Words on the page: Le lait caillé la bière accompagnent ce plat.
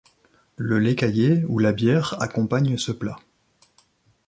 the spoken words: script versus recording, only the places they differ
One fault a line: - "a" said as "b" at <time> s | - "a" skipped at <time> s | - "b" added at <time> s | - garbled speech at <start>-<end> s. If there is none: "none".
- "ou" added at 1.4 s